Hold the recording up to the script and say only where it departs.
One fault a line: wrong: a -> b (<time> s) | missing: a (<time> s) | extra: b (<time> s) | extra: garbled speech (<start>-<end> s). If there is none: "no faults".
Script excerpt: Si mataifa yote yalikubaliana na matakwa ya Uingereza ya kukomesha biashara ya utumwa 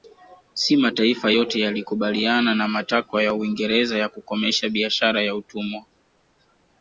no faults